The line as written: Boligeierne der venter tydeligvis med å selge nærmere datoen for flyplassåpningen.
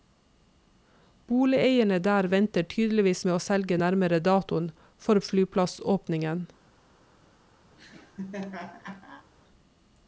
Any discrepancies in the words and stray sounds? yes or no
yes